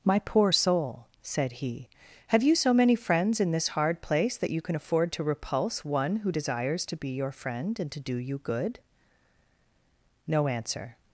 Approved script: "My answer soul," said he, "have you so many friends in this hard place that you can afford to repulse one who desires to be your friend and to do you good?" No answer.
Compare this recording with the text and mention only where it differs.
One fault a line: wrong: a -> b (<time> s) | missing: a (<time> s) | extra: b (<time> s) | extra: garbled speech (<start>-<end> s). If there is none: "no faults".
wrong: answer -> poor (0.2 s)